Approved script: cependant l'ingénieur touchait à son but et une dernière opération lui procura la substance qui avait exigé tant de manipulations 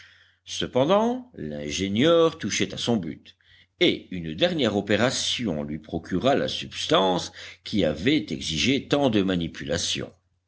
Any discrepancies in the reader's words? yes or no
no